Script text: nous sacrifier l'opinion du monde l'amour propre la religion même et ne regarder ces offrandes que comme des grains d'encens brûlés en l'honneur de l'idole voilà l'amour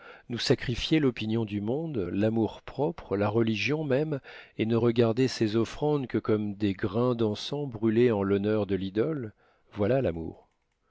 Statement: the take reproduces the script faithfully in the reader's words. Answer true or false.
true